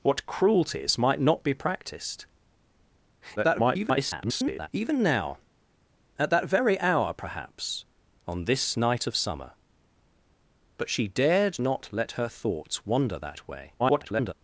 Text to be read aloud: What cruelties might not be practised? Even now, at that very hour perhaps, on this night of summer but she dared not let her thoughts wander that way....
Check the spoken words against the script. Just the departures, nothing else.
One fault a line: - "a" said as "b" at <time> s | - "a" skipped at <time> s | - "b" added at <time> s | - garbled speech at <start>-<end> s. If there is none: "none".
- garbled speech at 3.4-4.7 s
- garbled speech at 13.8-14.3 s